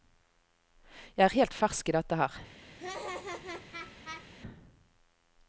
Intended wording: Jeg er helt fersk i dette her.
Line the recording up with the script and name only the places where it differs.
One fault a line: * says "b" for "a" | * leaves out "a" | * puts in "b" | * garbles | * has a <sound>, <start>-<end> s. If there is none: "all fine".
* has a laugh, 2.8-4.3 s